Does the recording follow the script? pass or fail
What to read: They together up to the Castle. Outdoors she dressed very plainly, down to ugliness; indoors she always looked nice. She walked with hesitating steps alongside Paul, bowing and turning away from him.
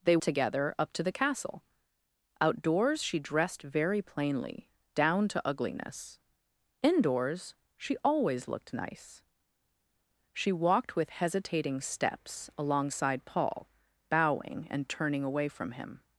pass